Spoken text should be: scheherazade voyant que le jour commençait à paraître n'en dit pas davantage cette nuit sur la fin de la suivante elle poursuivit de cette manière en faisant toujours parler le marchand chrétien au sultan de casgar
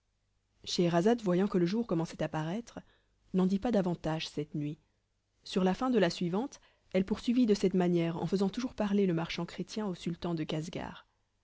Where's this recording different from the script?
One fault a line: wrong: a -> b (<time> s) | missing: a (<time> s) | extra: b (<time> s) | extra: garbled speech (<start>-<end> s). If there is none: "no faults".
no faults